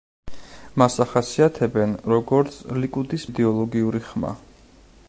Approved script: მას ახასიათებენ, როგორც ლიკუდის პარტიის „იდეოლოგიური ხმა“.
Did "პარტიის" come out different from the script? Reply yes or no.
yes